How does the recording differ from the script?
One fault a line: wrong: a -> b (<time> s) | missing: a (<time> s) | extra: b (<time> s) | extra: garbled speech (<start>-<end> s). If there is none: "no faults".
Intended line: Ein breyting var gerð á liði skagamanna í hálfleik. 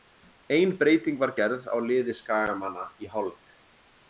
no faults